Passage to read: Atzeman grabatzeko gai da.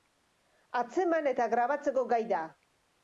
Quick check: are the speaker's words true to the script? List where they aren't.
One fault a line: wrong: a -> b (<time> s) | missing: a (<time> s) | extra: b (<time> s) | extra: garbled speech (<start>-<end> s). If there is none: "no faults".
extra: eta (1.3 s)